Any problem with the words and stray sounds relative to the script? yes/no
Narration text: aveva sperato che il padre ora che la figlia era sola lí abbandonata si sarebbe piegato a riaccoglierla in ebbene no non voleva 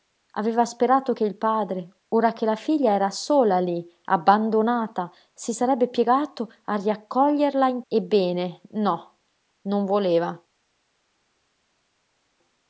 no